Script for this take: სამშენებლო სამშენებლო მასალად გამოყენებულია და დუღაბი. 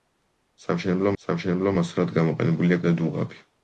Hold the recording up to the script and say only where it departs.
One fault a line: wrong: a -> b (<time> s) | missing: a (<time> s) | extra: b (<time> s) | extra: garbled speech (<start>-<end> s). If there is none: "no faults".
no faults